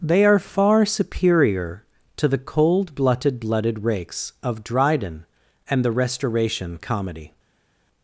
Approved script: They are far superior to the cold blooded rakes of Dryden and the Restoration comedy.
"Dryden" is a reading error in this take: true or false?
false